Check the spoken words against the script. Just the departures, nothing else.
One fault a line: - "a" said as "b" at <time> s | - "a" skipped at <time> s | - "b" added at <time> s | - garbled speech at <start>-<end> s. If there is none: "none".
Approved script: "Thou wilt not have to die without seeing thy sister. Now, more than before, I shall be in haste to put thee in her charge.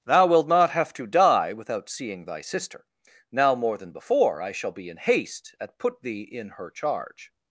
- "to" said as "at" at 5.6 s